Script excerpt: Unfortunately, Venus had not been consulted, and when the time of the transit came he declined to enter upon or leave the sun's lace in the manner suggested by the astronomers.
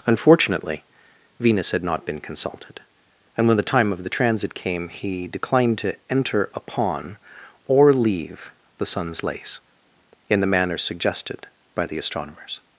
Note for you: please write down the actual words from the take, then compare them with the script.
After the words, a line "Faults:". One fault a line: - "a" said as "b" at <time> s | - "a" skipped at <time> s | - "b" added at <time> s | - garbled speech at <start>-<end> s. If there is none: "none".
Unfortunately, Venus had not been consulted, and when the time of the transit came he declined to enter upon or leave the sun's lace in the manner suggested by the astronomers.
Faults:
none